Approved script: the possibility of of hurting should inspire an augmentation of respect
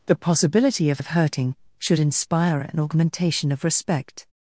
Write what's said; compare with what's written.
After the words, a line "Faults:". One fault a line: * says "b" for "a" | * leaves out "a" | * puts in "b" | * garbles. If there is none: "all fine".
the possibility of of hurting should inspire an augmentation of respect
Faults:
all fine